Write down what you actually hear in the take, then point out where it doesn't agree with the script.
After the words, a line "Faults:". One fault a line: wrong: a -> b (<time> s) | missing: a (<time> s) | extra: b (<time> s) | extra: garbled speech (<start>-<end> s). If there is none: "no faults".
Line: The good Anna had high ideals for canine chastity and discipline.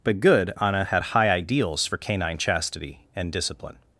But good Anna had high ideals for canine chastity and discipline.
Faults:
wrong: The -> But (0.0 s)